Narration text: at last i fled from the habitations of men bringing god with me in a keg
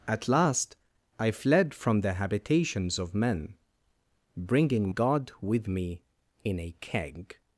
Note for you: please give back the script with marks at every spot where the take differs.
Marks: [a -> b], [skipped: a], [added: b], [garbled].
at last i fled from the habitations of men bringing god with me in a keg